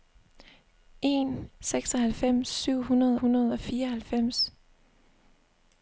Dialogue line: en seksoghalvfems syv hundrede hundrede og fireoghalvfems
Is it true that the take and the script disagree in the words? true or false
false